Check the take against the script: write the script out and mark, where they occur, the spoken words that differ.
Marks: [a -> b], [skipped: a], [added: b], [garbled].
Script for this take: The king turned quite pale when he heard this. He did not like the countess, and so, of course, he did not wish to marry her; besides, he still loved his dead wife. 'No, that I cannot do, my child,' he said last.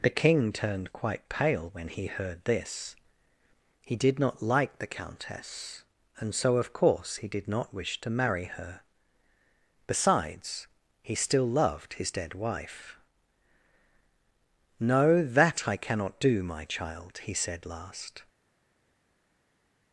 The king turned quite pale when he heard this. He did not like the countess, and so, of course, he did not wish to marry her; besides, he still loved his dead wife. 'No, that I cannot do, my child,' he said last.